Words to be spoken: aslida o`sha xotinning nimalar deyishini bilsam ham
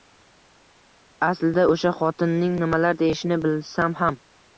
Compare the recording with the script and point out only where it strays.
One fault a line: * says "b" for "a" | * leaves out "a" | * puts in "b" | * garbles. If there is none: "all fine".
all fine